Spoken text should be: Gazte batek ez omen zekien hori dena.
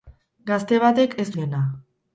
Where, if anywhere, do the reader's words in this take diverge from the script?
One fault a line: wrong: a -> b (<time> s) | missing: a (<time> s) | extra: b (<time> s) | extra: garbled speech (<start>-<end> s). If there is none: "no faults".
missing: omen zekien hori (1.3 s)